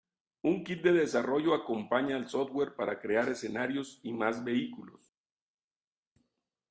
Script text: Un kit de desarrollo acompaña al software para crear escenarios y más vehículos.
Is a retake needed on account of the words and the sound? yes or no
no